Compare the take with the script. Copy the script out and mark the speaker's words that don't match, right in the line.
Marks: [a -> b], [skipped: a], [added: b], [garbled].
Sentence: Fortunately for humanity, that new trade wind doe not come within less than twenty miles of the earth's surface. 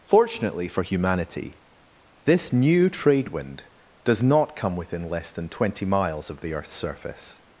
Fortunately for humanity, [that -> this] new trade wind [doe -> does] not come within less than twenty miles of the earth's surface.